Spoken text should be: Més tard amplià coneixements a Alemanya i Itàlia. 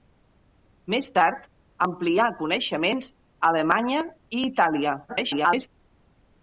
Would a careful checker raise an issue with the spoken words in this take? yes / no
yes